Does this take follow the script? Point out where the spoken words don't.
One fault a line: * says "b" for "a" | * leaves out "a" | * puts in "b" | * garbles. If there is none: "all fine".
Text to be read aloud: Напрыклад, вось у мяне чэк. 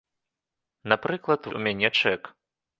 * leaves out "вось"